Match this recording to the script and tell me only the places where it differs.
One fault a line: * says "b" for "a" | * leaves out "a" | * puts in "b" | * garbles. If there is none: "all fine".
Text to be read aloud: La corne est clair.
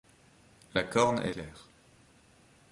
all fine